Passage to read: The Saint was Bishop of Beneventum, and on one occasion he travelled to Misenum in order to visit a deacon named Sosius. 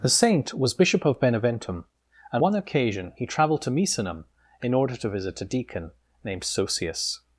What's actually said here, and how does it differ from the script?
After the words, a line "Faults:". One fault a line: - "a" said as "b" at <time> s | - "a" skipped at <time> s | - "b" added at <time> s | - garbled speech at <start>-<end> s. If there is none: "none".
The Saint was Bishop of Beneventum, and one occasion he travelled to Misenum in order to visit a deacon named Sosius.
Faults:
- "on" skipped at 2.4 s